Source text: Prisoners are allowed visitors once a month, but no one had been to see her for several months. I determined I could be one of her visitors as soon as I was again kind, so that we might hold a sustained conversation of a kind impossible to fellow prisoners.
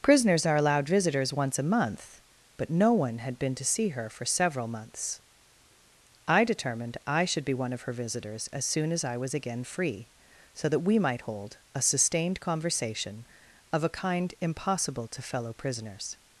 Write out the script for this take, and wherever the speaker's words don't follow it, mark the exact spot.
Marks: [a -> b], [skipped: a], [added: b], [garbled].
Prisoners are allowed visitors once a month, but no one had been to see her for several months. I determined I [could -> should] be one of her visitors as soon as I was again [kind, -> free] so that we might hold a sustained conversation of a kind impossible to fellow prisoners.